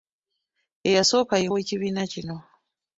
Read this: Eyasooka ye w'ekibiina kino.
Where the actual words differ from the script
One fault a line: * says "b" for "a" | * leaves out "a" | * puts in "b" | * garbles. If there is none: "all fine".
all fine